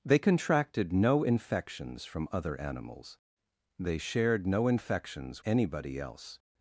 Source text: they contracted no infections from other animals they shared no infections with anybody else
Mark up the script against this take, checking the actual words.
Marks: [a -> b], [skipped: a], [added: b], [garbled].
they contracted no infections from other animals they shared no infections [skipped: with] anybody else